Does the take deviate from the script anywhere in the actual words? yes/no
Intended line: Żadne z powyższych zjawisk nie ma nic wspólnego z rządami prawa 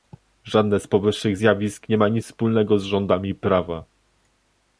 no